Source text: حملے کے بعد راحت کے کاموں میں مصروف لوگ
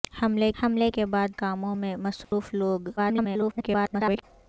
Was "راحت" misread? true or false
true